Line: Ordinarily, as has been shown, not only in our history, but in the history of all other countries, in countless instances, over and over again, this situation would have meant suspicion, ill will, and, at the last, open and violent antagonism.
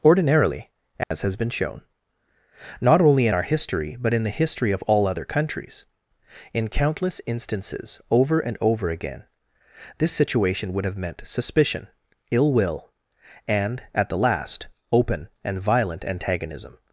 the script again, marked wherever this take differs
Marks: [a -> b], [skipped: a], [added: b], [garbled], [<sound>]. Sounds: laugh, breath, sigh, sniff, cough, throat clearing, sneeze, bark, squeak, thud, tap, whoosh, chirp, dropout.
Ordinarily, as [dropout] has been shown, not only in our history, but in the history of all other countries, in countless instances, over and over again, this situation would have meant suspicion, ill will, and, at the last, open and violent antagonism.